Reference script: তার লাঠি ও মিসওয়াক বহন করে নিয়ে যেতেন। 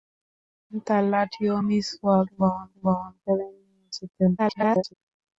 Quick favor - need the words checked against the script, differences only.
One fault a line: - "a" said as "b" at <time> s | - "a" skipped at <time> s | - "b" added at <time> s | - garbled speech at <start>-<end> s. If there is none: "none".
- "বহন" added at 2.8 s
- garbled speech at 4.4-4.9 s